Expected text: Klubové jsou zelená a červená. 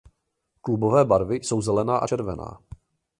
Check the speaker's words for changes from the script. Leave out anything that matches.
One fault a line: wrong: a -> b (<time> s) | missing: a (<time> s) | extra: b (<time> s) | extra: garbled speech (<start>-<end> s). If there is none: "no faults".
extra: barvy (1.1 s)